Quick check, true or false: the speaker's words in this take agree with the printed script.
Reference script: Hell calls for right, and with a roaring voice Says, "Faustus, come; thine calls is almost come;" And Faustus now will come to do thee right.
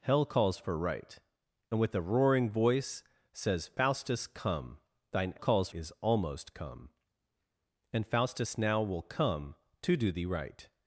true